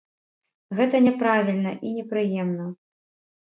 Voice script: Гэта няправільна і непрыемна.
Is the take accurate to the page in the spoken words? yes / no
yes